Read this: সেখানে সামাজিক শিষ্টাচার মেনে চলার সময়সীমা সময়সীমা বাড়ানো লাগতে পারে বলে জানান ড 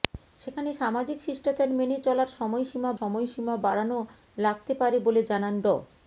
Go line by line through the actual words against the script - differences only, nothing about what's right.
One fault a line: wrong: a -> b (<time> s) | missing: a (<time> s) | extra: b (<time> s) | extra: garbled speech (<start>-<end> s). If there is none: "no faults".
no faults